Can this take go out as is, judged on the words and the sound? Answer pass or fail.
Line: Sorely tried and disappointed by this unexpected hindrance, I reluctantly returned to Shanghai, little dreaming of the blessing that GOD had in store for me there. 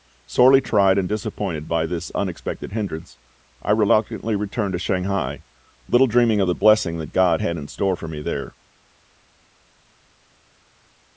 pass